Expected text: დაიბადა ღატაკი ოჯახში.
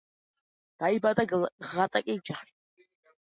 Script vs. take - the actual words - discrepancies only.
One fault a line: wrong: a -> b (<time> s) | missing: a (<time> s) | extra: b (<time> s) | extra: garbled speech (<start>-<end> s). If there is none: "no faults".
no faults